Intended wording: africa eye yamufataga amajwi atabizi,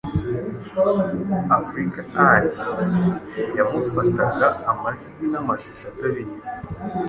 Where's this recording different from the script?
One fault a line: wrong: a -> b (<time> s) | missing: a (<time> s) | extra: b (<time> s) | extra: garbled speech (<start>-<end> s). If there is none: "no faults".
extra: n'amashusho (5.3 s)